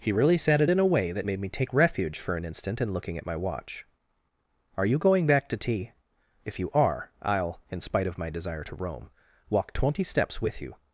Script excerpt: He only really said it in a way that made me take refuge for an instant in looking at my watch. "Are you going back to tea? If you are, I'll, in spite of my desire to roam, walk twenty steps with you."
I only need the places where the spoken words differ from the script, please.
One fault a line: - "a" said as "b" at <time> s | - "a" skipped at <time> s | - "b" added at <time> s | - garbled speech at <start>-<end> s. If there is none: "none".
- "only" skipped at 0.1 s